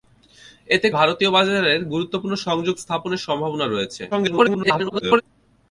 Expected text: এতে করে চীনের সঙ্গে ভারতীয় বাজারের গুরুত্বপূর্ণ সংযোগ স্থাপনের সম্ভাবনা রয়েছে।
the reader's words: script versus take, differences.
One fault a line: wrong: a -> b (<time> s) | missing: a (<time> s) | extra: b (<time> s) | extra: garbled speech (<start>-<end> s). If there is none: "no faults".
missing: করে চীনের সঙ্গে (0.9 s)
extra: garbled speech (4.1-5.2 s)